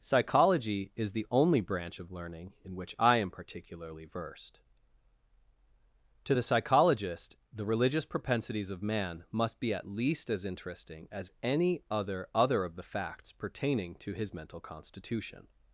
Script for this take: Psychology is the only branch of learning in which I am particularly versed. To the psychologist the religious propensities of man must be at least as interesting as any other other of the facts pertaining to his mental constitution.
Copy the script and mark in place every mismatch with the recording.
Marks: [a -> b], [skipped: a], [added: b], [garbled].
Psychology is the only branch of learning in which I am particularly versed. To the psychologist the religious propensities of man must be at least as interesting as any other other of the facts pertaining to his mental constitution.